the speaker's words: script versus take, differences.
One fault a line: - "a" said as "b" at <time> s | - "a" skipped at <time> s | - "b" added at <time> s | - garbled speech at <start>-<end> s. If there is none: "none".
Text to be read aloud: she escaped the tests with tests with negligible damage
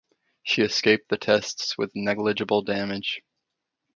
- "tests with" skipped at 1.9 s